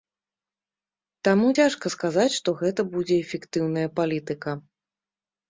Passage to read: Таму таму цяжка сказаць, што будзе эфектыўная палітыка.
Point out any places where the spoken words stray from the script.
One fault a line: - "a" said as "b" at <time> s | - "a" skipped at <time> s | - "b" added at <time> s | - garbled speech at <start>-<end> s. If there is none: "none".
- "таму" skipped at 1.5 s
- "гэта" added at 2.6 s